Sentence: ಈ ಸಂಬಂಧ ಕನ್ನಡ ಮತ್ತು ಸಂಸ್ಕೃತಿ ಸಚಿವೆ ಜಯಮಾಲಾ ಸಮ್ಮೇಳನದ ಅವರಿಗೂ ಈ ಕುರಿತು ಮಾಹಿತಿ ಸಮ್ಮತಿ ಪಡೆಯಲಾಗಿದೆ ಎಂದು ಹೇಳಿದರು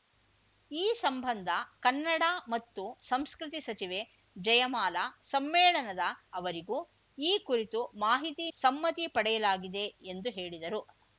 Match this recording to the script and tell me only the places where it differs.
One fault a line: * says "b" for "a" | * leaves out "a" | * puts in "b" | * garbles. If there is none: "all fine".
all fine